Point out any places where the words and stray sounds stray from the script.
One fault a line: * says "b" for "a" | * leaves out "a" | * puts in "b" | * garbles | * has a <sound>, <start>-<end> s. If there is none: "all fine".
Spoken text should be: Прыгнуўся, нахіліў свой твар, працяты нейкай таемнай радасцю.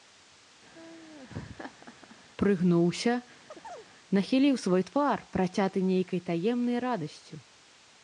* has a laugh, 0.7-2.2 s
* has a chirp, 3.5-3.9 s